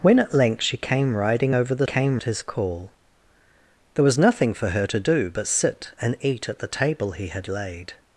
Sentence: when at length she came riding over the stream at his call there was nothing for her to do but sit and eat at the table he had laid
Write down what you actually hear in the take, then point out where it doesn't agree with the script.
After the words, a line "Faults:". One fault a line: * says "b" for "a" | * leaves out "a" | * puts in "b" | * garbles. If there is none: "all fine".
when at length she came riding over the came at his call there was nothing for her to do but sit and eat at the table he had laid
Faults:
* says "came" for "stream"